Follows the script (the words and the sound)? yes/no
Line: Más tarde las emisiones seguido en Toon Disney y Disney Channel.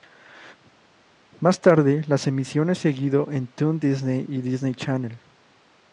yes